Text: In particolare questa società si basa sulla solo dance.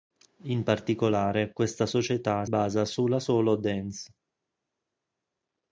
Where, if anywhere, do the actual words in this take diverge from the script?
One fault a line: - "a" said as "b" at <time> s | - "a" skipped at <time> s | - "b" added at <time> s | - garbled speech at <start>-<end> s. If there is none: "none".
- "si" skipped at 2.4 s